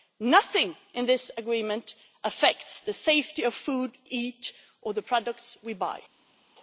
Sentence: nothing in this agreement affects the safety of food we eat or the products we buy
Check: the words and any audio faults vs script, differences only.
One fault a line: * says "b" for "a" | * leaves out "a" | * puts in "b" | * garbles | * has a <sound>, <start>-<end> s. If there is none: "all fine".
* leaves out "we"